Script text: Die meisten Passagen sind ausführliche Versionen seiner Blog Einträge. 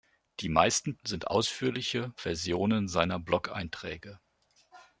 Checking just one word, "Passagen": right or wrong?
wrong